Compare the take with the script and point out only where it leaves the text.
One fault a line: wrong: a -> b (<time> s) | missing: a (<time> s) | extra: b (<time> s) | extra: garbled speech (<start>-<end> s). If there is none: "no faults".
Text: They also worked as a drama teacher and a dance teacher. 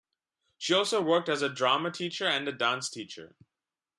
wrong: They -> She (0.6 s)